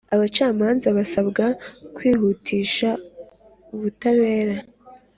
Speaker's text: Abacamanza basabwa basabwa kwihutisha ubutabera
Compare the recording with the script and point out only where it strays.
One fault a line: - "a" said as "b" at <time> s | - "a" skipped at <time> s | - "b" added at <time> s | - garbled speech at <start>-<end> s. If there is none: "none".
- "basabwa" skipped at 1.4 s